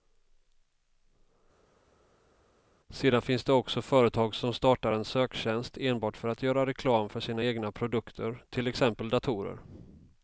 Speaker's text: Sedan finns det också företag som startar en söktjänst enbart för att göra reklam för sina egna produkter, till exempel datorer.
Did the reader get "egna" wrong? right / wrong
right